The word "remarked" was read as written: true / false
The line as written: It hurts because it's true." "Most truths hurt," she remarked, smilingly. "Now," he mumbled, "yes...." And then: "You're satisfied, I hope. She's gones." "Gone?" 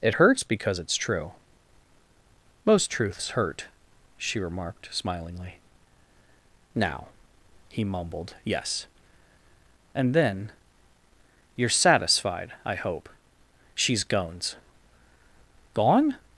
true